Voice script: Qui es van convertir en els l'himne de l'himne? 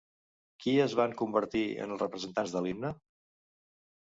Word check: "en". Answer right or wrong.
right